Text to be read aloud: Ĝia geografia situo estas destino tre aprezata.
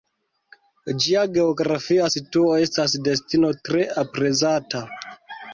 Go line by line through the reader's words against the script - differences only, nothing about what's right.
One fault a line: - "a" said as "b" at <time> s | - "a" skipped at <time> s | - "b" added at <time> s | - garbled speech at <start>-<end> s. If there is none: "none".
none